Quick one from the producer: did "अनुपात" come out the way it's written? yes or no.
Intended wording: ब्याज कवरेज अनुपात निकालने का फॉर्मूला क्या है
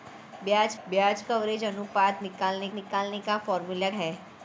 yes